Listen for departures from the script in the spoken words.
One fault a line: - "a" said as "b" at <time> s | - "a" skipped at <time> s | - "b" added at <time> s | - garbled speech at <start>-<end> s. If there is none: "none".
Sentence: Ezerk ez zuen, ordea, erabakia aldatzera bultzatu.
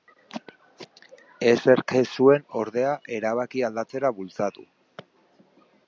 none